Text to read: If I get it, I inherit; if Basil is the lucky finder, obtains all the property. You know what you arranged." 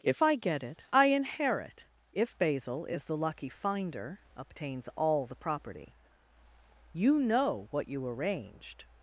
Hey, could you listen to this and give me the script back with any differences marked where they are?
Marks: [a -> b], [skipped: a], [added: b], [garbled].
If I get it, I inherit; if Basil is the lucky finder, obtains all the property. You know what you arranged."